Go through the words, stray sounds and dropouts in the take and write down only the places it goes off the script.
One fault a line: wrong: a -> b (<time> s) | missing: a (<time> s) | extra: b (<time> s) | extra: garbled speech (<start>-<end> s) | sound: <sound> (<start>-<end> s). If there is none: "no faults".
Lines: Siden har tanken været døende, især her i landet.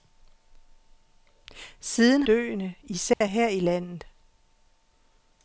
missing: har tanken været (2.2 s)
sound: dropout (3.1-3.2 s)